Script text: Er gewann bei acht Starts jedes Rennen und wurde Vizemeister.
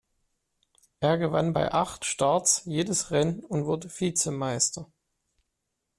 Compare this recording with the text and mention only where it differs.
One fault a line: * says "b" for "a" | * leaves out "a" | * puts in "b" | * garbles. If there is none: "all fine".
all fine